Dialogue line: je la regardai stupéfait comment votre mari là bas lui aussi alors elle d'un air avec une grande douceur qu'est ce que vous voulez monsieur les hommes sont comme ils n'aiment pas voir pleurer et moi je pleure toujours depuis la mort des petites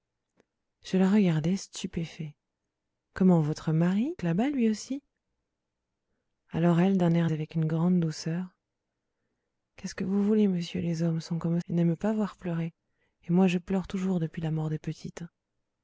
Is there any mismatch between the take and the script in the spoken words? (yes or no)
no